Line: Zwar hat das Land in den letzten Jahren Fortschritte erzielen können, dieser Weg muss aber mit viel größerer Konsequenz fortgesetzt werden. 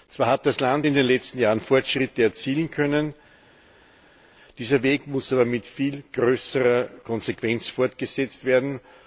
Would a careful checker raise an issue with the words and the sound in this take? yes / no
no